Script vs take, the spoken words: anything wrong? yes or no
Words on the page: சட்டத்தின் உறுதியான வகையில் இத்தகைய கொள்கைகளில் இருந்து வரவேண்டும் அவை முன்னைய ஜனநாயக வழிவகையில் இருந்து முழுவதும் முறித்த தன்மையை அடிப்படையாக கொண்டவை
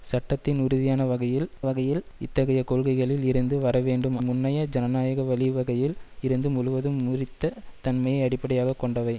yes